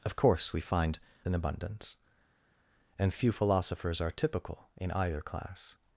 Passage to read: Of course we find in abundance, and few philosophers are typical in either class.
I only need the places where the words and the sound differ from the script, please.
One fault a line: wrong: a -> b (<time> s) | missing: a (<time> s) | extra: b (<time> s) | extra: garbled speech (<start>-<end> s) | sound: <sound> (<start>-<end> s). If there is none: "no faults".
no faults